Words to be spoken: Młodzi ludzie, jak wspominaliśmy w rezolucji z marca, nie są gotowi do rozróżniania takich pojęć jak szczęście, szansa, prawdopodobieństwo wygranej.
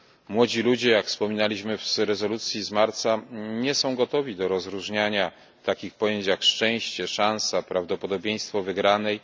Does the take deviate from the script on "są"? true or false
false